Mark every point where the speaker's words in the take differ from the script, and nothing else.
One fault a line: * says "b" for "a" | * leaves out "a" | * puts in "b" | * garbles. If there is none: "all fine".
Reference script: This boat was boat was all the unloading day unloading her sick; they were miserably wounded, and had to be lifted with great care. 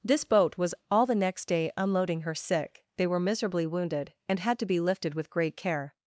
* leaves out "boat was"
* says "next" for "unloading"